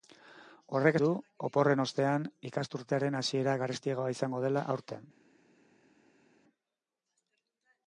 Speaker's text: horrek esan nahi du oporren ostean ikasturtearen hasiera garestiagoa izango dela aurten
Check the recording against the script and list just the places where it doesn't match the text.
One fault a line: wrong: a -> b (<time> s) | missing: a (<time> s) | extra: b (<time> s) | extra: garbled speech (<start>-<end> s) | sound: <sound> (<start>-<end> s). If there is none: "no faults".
missing: esan nahi (0.9 s)